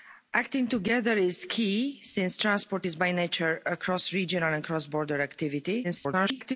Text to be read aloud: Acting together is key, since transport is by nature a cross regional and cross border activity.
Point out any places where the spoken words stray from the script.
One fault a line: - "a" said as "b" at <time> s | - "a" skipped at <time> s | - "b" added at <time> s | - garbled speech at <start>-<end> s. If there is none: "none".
- garbled speech at 5.8-6.6 s